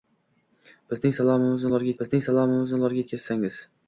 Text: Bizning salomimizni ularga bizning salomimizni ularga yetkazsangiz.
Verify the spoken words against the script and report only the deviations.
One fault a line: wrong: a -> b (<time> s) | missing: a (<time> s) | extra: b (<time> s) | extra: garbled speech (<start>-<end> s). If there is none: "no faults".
no faults